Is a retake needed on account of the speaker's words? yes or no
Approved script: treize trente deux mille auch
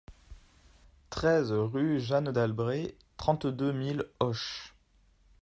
yes